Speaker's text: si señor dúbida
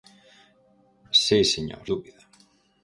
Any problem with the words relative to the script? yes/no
no